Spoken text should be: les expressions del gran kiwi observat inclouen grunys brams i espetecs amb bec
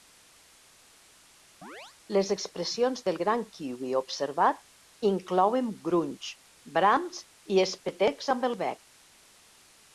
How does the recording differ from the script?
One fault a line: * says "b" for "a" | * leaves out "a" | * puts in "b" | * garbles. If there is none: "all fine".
* puts in "el"